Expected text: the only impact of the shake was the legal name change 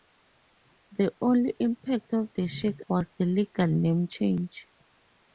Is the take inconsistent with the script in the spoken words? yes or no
no